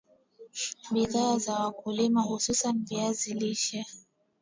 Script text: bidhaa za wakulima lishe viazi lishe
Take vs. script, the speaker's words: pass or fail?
fail